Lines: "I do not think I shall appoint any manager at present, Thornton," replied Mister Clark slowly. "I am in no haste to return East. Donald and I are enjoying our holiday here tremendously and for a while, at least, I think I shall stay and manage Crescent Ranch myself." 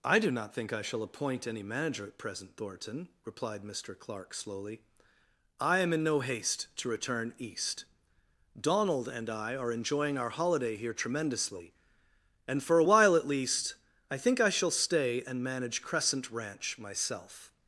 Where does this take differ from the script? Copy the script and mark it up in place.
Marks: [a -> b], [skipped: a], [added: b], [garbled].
"I do not think I shall appoint any manager at present, Thornton," replied Mister Clark slowly. "I am in no haste to return East. Donald and I are enjoying our holiday here tremendously and for a while, at least, I think I shall stay and manage Crescent Ranch myself."